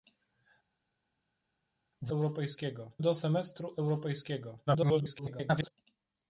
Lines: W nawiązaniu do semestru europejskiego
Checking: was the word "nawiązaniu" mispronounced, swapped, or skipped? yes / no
yes